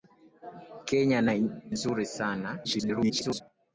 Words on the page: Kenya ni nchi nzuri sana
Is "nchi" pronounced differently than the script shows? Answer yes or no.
yes